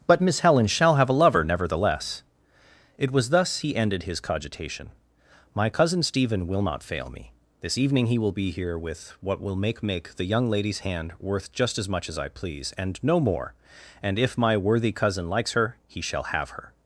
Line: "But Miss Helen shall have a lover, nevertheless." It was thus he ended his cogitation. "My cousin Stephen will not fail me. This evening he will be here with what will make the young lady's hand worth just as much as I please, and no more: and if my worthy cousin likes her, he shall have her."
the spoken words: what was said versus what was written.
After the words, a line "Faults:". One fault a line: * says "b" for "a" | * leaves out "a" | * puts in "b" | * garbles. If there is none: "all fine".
"But Miss Helen shall have a lover, nevertheless." It was thus he ended his cogitation. "My cousin Stephen will not fail me. This evening he will be here with what will make make the young lady's hand worth just as much as I please, and no more: and if my worthy cousin likes her, he shall have her."
Faults:
* puts in "make"